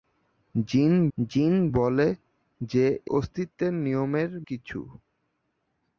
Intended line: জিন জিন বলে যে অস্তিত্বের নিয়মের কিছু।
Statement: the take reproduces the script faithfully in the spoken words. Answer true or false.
true